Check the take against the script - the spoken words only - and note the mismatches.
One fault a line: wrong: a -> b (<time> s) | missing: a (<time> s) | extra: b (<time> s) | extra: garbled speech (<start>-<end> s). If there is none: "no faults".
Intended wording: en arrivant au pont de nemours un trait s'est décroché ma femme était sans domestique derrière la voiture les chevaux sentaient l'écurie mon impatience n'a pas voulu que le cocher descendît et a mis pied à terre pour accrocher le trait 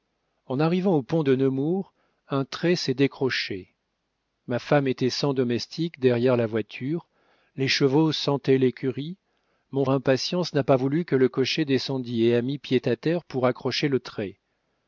no faults